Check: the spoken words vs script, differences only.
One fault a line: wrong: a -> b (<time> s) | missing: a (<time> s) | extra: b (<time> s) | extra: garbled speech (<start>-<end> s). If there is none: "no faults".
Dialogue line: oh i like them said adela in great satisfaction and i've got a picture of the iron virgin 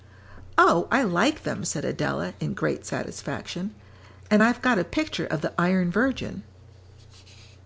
no faults